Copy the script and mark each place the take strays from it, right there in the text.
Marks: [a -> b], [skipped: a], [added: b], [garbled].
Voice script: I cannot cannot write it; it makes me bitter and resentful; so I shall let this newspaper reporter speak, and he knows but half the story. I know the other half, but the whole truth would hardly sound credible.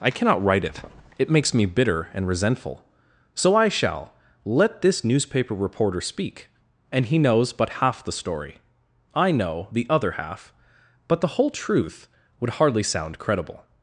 I cannot [skipped: cannot] write it; it makes me bitter and resentful; so I shall let this newspaper reporter speak, and he knows but half the story. I know the other half, but the whole truth would hardly sound credible.